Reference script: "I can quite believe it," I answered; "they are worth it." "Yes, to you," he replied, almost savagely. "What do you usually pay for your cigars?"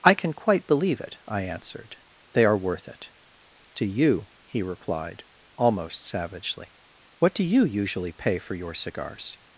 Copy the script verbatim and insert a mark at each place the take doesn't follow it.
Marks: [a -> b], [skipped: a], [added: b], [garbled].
"I can quite believe it," I answered; "they are worth it." [skipped: "Yes,] to you," he replied, almost savagely. "What do you usually pay for your cigars?"